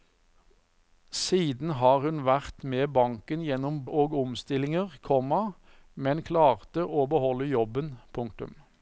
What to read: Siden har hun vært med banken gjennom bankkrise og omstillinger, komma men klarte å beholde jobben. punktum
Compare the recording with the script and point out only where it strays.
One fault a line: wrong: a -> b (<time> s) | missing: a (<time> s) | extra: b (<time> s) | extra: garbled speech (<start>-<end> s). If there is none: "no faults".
missing: bankkrise (3.8 s)